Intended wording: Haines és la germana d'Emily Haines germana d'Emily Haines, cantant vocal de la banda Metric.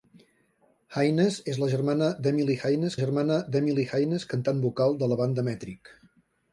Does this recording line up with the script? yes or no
yes